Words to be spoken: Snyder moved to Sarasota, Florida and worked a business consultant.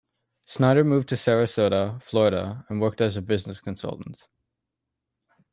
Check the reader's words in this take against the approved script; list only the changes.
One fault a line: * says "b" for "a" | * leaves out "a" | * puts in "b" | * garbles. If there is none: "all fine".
* puts in "as"